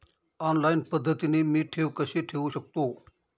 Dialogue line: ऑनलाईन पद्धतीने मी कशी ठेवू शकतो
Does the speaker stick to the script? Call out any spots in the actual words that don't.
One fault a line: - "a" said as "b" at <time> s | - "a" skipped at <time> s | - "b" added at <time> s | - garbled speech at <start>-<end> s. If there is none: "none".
- "ठेव" added at 1.7 s